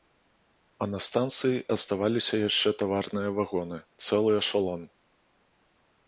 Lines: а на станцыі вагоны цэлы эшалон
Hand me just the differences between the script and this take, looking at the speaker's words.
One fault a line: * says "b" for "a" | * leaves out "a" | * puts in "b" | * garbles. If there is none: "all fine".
* puts in "аставаліся яшчэ таварныя"